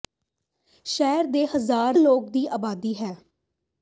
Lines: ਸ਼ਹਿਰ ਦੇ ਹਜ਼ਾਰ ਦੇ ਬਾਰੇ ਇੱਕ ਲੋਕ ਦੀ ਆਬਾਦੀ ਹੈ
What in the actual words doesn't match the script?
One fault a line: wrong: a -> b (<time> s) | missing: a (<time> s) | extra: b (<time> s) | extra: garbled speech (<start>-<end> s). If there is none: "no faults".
missing: ਦੇ ਬਾਰੇ ਇੱਕ (2.0 s)